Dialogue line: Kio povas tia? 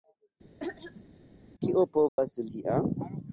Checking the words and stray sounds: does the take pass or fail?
fail